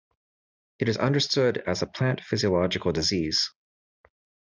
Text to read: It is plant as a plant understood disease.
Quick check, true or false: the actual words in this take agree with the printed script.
false